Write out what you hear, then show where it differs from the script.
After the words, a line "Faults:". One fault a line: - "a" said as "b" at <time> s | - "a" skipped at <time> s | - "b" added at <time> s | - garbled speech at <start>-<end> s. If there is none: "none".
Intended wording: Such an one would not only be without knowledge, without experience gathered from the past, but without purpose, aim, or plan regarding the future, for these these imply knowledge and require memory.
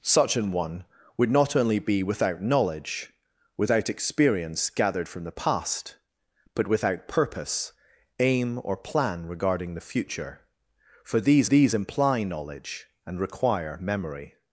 Such an one would not only be without knowledge, without experience gathered from the past, but without purpose, aim, or plan regarding the future, for these these imply knowledge and require memory.
Faults:
none